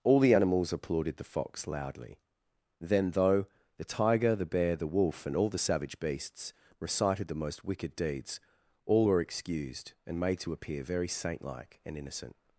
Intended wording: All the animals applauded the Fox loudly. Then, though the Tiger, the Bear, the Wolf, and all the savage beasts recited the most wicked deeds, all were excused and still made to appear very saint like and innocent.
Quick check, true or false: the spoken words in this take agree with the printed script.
false